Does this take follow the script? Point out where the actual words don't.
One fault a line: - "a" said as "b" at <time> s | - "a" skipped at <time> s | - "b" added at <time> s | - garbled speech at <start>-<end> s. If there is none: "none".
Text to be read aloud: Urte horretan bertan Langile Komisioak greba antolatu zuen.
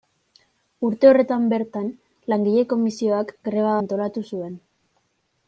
none